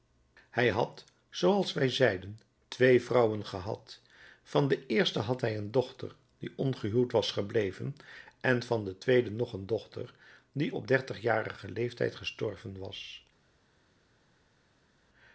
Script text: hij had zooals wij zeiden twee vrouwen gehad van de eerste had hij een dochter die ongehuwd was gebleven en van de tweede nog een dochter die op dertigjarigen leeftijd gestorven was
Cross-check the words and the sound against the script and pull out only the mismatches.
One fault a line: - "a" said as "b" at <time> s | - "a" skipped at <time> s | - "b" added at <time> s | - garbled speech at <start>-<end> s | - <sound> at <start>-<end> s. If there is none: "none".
none